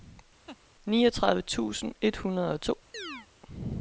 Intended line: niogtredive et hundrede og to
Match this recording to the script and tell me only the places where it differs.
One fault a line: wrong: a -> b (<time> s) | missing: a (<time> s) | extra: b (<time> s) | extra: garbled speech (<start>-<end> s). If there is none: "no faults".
extra: tusind (1.4 s)